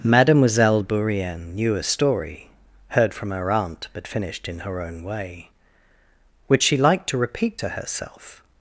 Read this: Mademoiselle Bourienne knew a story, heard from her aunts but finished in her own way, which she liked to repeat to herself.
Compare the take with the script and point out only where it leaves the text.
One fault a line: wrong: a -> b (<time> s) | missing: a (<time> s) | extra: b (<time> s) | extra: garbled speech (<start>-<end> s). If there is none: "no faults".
wrong: aunts -> aunt (3.5 s)